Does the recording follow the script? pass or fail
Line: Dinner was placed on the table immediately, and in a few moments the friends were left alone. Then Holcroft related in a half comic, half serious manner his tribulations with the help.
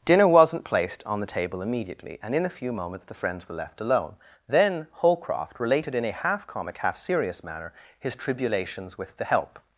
fail